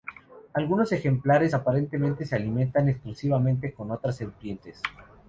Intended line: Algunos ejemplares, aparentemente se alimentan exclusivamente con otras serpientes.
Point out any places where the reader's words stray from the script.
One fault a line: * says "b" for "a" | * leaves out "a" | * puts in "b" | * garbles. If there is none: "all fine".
all fine